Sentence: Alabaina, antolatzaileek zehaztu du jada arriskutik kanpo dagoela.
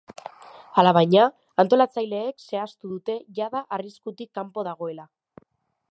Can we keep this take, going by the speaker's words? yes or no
no